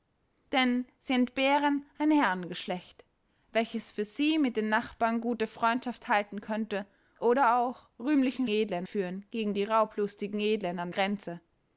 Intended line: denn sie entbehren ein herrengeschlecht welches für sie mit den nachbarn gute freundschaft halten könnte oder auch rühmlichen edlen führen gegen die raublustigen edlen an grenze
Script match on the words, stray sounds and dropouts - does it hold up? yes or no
yes